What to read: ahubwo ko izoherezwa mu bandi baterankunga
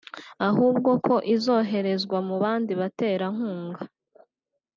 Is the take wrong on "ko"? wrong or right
right